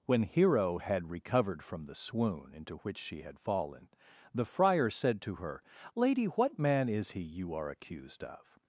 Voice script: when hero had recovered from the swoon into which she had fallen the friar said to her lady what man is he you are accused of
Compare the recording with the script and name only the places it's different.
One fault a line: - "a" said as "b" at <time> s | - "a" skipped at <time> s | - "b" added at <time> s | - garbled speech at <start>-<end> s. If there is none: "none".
none